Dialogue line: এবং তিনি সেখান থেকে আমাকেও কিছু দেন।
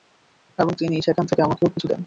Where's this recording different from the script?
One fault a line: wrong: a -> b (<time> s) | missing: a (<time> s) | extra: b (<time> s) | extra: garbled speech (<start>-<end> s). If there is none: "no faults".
no faults